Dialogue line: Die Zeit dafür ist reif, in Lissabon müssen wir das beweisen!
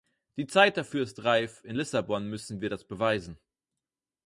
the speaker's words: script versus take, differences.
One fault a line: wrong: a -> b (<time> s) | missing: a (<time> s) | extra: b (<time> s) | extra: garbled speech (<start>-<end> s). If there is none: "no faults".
no faults